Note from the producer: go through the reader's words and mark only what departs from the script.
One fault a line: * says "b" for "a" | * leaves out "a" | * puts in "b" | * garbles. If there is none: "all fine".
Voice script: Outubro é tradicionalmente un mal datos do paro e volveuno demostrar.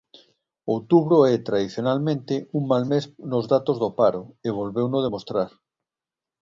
* puts in "mes nos"